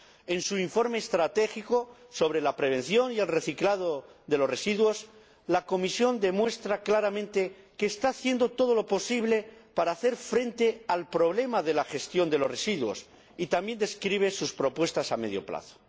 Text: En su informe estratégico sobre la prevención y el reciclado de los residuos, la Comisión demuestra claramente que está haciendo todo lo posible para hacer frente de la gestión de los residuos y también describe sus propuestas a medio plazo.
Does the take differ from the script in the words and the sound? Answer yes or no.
yes